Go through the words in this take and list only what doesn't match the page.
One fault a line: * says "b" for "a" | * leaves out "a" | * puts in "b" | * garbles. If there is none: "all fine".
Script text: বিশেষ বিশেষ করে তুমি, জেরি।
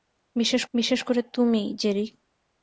all fine